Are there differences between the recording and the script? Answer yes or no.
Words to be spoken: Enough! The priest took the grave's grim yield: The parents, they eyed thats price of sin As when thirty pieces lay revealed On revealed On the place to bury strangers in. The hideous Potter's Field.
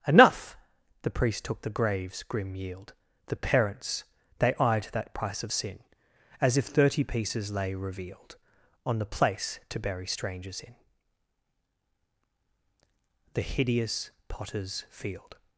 yes